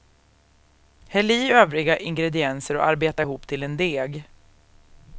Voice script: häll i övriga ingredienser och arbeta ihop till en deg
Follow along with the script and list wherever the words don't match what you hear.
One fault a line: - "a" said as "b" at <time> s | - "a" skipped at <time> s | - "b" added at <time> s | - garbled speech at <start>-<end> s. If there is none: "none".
none